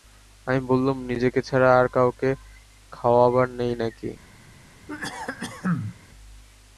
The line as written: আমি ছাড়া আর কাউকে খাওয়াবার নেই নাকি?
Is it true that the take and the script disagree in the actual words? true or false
true